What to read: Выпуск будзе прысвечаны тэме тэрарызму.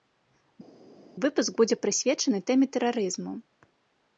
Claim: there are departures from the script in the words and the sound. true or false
false